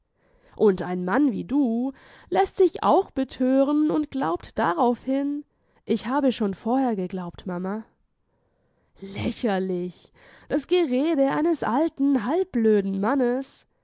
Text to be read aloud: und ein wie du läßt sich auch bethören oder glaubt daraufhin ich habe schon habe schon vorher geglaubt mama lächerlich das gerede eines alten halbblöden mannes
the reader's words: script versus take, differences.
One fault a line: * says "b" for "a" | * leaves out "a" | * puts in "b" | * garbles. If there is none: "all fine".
* puts in "mann"
* says "und" for "oder"
* leaves out "habe schon"